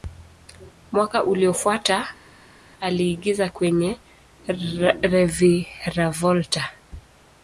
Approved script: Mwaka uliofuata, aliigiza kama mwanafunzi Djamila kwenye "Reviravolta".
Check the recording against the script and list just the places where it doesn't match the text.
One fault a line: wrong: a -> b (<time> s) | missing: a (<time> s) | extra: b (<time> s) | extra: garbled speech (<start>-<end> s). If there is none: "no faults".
missing: kama mwanafunzi Djamila (3.5 s)